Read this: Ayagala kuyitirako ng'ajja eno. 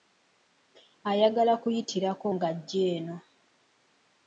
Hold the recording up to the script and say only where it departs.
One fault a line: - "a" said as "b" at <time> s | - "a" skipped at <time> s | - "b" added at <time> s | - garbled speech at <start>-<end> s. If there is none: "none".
none